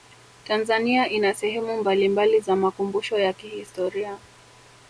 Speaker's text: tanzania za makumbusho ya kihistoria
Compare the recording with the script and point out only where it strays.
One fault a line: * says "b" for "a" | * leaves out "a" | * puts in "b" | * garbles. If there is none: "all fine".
* puts in "ina sehemu mbalimbali"